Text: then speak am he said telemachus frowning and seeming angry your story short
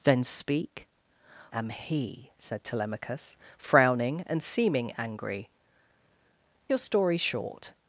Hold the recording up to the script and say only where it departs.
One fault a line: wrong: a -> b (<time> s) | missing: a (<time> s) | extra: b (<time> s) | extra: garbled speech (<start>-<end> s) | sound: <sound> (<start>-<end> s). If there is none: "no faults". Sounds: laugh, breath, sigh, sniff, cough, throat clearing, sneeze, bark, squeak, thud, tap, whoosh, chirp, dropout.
no faults